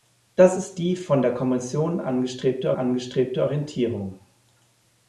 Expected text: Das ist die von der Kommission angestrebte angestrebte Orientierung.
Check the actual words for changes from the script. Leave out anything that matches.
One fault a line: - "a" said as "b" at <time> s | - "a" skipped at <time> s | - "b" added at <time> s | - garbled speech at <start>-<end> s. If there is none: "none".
none